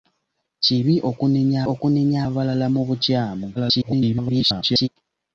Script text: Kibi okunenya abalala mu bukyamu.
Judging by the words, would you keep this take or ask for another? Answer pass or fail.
fail